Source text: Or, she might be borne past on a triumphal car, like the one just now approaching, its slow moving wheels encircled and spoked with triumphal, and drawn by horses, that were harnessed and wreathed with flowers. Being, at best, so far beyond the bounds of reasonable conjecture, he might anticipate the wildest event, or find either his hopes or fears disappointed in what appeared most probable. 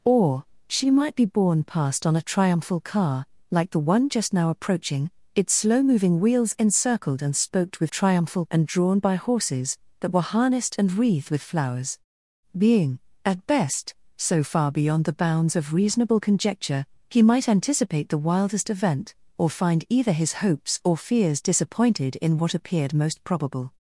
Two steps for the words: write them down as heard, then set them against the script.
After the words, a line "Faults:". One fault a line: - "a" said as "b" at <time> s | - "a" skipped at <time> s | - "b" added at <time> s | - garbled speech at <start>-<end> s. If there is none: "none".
Or, she might be borne past on a triumphal car, like the one just now approaching, its slow moving wheels encircled and spoked with triumphal, and drawn by horses, that were harnessed and wreathed with flowers. Being, at best, so far beyond the bounds of reasonable conjecture, he might anticipate the wildest event, or find either his hopes or fears disappointed in what appeared most probable.
Faults:
none